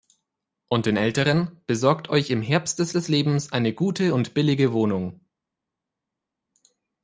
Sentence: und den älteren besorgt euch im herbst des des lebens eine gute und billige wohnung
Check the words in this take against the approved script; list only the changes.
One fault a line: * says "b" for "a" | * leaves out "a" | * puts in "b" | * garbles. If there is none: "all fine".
all fine